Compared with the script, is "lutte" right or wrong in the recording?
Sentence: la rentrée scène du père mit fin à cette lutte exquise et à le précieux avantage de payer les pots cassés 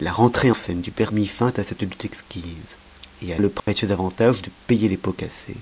right